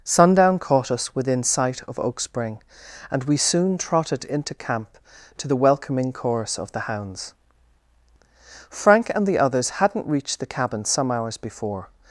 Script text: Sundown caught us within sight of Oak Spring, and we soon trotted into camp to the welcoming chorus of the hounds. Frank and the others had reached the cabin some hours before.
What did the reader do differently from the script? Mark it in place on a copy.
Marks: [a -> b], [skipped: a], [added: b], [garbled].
Sundown caught us within sight of Oak Spring, and we soon trotted into camp to the welcoming chorus of the hounds. Frank and the others [had -> hadn't] reached the cabin some hours before.